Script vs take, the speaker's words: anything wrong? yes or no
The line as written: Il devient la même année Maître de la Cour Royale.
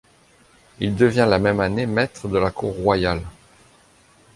no